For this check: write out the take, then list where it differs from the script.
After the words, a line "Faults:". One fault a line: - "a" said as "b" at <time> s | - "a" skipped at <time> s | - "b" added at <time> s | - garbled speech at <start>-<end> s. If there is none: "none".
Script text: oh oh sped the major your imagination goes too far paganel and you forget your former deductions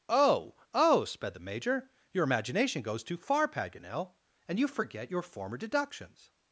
oh oh sped the major your imagination goes too far paganel and you forget your former deductions
Faults:
none